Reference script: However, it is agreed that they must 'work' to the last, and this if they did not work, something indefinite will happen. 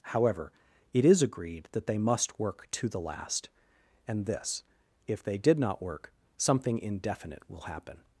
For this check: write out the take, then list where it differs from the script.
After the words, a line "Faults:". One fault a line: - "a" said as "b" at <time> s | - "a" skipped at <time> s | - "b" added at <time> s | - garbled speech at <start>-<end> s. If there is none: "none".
However, it is agreed that they must 'work' to the last, and this if they did not work, something indefinite will happen.
Faults:
none